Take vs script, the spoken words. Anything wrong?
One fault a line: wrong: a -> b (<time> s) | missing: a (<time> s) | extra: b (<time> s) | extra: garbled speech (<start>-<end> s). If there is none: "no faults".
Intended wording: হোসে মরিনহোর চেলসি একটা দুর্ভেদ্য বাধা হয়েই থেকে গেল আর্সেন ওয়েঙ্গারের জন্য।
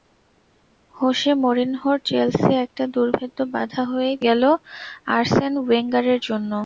missing: থেকে (4.2 s)